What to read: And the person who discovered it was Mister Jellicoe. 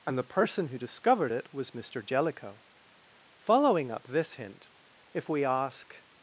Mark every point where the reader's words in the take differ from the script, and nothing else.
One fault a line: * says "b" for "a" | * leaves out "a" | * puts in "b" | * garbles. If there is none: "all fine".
* puts in "Following up this hint if we ask"